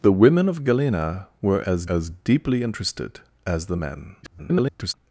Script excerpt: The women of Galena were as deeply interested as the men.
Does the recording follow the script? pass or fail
fail